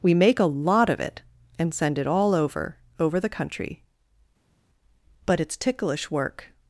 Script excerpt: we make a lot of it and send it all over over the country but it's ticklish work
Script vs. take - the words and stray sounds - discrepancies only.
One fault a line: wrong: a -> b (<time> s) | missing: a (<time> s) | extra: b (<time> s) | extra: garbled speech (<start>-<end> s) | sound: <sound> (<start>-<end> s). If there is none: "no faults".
no faults